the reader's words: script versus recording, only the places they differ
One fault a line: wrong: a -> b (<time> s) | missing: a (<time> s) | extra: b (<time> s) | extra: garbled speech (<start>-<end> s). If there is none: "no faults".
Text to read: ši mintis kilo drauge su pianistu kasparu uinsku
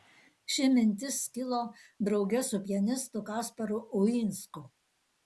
no faults